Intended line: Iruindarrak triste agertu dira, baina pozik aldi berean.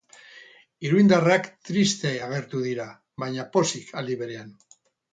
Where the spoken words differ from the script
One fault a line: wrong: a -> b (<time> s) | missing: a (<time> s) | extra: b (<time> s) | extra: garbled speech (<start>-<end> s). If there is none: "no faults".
no faults